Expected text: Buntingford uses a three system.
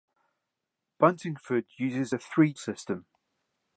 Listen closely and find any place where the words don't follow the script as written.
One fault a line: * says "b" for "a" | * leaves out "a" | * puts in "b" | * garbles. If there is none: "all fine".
all fine